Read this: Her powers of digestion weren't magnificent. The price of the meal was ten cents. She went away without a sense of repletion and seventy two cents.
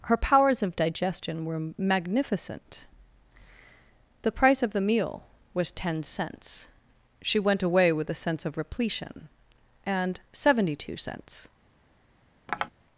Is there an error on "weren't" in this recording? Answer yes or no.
yes